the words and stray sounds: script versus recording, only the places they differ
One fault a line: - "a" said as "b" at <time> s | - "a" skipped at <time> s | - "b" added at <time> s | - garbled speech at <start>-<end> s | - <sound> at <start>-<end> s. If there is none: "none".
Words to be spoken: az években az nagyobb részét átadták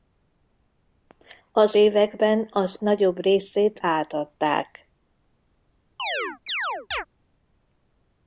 - chirp at 6.0-7.1 s